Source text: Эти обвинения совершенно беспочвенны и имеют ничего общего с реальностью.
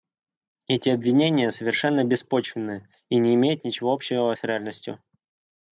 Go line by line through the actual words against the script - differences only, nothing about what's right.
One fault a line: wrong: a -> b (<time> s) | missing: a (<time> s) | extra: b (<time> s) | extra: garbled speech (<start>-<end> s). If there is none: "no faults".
extra: не (3.2 s)